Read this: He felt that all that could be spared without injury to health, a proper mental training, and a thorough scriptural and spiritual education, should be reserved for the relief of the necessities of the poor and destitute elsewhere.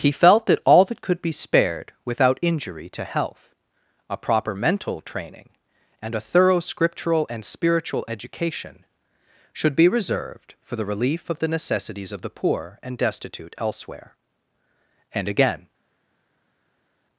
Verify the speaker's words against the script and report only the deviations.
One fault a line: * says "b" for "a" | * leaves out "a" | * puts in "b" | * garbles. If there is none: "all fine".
* puts in "And again"